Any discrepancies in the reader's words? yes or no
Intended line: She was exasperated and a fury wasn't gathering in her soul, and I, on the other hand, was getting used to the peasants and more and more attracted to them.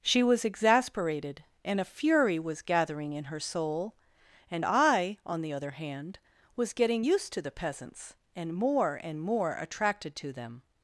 yes